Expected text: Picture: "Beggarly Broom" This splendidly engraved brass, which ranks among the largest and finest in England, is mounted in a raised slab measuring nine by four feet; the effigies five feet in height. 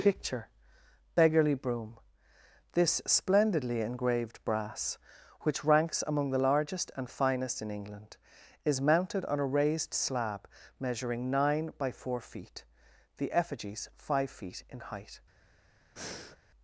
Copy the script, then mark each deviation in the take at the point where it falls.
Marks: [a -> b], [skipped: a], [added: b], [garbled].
Picture: "Beggarly Broom" This splendidly engraved brass, which ranks among the largest and finest in England, is mounted [in -> on] a raised slab measuring nine by four feet; the effigies five feet in height.